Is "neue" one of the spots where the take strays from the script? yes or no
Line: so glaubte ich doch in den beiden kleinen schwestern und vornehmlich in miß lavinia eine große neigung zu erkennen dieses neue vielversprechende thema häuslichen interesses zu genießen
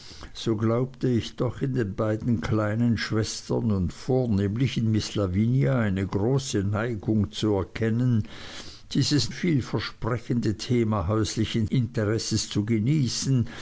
yes